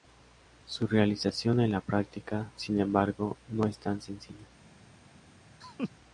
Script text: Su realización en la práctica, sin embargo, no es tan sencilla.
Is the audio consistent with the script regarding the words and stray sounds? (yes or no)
no